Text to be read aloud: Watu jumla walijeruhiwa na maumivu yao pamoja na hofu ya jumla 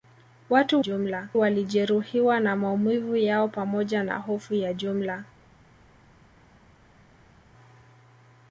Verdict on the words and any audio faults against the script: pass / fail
pass